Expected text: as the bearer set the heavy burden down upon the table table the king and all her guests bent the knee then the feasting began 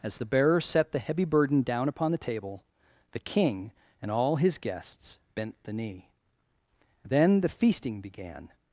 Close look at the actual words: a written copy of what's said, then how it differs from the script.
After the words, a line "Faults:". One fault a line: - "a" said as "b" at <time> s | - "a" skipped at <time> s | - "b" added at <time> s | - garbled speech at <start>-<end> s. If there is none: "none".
as the bearer set the heavy burden down upon the table the king and all his guests bent the knee then the feasting began
Faults:
- "table" skipped at 2.6 s
- "her" said as "his" at 4.4 s